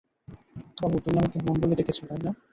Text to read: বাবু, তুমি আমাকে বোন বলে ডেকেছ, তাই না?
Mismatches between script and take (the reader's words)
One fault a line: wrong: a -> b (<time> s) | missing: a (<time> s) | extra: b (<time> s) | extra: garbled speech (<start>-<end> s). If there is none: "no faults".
no faults